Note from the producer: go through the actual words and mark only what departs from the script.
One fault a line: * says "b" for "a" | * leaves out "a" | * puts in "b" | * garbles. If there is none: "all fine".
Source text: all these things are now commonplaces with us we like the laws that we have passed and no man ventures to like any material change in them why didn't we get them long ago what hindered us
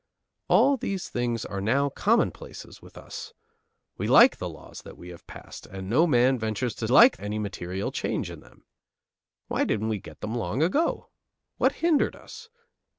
all fine